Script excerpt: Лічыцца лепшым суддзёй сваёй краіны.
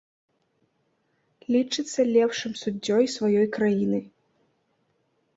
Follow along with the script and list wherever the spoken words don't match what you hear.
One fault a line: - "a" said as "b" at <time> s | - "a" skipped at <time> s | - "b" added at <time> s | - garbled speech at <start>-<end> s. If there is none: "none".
none